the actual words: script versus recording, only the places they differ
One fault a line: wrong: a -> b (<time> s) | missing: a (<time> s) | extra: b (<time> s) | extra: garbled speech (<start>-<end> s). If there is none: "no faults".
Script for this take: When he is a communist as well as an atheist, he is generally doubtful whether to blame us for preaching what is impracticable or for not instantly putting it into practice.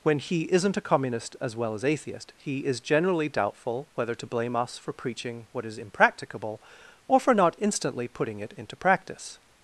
wrong: is -> isn't (0.5 s)
missing: an (1.9 s)